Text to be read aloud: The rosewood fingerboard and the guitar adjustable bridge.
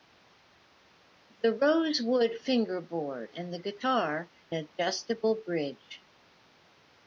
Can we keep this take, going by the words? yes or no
yes